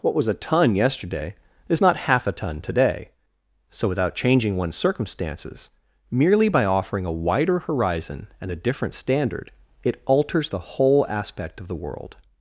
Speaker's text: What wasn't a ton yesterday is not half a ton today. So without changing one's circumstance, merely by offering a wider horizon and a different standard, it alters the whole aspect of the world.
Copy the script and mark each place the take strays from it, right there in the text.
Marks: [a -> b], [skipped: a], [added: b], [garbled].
What [wasn't -> was] a ton yesterday is not half a ton today. So without changing one's [circumstance, -> circumstances] merely by offering a wider horizon and a different standard, it alters the whole aspect of the world.